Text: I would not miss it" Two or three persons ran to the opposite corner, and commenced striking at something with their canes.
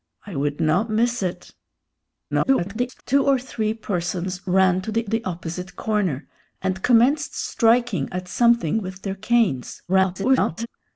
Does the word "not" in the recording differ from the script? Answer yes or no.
no